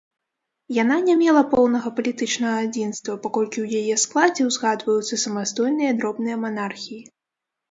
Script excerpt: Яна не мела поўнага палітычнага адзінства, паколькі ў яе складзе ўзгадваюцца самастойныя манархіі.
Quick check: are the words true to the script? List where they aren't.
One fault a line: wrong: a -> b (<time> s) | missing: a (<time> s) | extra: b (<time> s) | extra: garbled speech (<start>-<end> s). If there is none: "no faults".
extra: дробныя (6.0 s)